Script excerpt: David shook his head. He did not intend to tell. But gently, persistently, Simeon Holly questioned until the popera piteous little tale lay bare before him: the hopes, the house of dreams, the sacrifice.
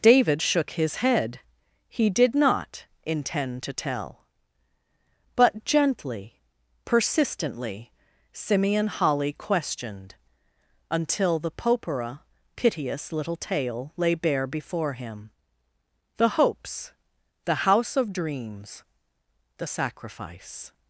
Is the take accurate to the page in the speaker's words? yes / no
yes